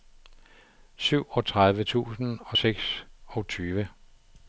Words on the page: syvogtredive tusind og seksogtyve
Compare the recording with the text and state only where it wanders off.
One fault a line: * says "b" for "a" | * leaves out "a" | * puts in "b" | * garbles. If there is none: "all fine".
all fine